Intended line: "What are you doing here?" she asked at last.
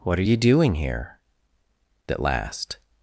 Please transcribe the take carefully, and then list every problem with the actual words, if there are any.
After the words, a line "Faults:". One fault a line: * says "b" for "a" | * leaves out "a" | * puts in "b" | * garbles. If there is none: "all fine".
"What are you doing here?" at last.
Faults:
* leaves out "she asked"